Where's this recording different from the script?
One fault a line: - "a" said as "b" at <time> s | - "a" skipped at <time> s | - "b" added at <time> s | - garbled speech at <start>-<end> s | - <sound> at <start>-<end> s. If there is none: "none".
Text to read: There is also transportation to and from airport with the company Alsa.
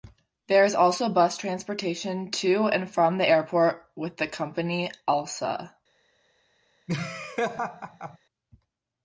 - "bus" added at 1.1 s
- "the" added at 3.2 s
- laugh at 6.9-8.2 s